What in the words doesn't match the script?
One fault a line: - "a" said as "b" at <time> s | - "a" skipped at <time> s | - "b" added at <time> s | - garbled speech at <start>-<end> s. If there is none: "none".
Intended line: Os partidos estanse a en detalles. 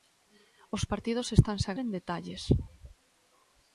none